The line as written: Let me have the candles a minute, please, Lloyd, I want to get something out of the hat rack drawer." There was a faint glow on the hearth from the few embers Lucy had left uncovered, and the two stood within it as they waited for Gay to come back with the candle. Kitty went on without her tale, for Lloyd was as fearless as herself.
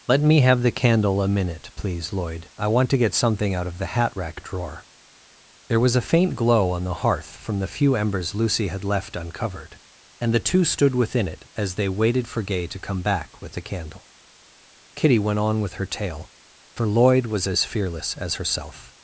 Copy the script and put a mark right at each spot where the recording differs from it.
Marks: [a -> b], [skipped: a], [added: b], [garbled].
Let me have the [candles -> candle] a minute, please, Lloyd, I want to get something out of the hat rack drawer." There was a faint glow on the hearth from the few embers Lucy had left uncovered, and the two stood within it as they waited for Gay to come back with the candle. Kitty went on [without -> with] her tale, for Lloyd was as fearless as herself.